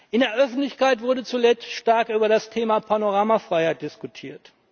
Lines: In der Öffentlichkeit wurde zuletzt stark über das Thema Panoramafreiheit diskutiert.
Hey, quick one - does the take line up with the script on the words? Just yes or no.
yes